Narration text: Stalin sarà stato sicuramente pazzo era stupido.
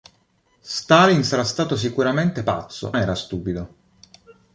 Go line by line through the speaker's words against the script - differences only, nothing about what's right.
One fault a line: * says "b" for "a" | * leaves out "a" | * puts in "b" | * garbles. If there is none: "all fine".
all fine